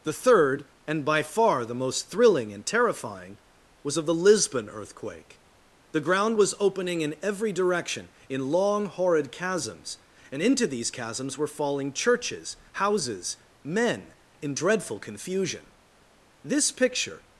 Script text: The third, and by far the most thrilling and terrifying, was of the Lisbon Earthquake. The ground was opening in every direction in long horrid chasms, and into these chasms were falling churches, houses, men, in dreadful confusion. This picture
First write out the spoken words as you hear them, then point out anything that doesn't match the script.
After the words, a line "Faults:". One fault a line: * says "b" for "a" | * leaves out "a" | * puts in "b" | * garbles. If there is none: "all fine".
The third, and by far the most thrilling and terrifying, was of the Lisbon Earthquake. The ground was opening in every direction in long horrid chasms, and into these chasms were falling churches, houses, men, in dreadful confusion. This picture
Faults:
all fine